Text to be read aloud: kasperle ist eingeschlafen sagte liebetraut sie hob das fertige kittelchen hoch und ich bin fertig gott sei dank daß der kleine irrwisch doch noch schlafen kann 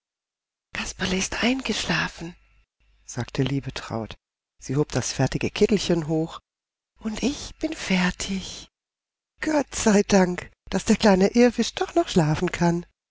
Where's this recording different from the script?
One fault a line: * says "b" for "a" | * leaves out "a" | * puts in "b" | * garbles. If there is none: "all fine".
all fine